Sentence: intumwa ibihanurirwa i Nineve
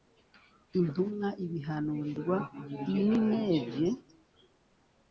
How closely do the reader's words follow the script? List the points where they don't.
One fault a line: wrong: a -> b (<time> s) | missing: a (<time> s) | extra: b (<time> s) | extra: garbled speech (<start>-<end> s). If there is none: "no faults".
no faults